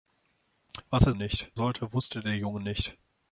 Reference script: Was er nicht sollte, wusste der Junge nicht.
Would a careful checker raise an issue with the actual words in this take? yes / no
no